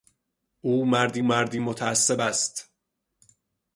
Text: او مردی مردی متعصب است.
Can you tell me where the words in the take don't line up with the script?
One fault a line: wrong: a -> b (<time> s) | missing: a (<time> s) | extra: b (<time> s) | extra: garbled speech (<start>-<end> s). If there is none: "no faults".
no faults